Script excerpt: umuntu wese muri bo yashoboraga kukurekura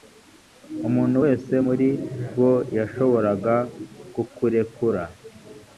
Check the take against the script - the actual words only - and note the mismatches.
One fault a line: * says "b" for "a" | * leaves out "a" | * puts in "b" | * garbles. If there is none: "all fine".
all fine